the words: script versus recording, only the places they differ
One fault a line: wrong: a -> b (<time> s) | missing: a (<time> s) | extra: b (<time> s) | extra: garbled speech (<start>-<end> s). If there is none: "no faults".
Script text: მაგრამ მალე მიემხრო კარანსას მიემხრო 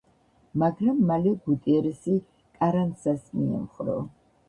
wrong: მიემხრო -> გუტიერესი (1.4 s)